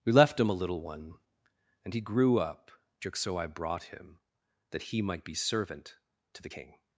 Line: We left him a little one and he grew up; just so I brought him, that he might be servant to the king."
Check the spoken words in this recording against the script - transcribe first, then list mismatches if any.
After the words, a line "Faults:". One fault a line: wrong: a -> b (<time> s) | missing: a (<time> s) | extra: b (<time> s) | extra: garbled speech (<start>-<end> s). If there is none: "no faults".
We left him a little one and he grew up; just so I brought him, that he might be servant to the king."
Faults:
no faults